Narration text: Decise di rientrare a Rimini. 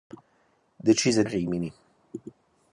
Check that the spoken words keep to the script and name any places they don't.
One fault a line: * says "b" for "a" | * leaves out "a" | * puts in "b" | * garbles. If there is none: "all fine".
* leaves out "di rientrare"